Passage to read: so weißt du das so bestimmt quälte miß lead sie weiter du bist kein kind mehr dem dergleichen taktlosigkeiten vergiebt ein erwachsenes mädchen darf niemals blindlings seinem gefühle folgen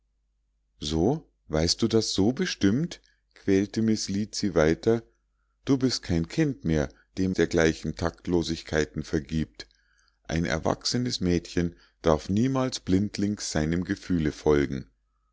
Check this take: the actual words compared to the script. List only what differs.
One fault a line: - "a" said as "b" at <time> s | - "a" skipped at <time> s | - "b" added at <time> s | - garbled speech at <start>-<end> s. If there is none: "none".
none